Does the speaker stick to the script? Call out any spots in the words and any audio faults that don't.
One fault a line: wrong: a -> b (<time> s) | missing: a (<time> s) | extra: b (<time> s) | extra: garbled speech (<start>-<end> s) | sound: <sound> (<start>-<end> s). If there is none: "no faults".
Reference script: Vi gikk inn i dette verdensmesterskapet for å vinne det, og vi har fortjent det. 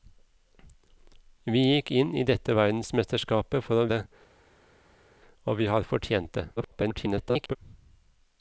missing: vinne (3.9 s)
extra: garbled speech (6.6-7.6 s)